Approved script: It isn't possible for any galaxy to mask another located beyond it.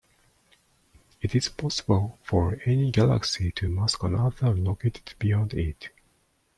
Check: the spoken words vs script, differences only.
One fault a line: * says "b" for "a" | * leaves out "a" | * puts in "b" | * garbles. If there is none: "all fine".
* says "is" for "isn't"